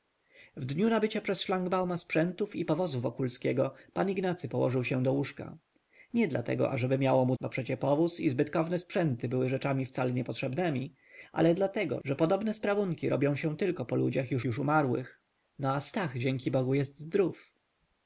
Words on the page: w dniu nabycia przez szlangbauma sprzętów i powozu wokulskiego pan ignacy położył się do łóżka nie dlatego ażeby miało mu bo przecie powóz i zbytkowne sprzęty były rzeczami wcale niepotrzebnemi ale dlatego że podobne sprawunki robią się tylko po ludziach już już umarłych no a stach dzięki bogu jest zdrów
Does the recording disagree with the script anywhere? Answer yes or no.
no